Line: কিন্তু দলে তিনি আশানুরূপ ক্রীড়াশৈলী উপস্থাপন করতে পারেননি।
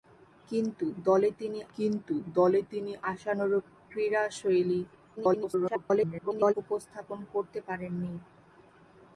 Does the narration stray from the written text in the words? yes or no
yes